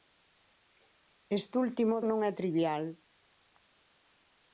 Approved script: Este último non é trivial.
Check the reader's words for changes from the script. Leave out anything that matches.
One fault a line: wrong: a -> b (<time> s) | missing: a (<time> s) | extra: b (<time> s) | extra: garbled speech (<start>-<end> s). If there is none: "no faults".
no faults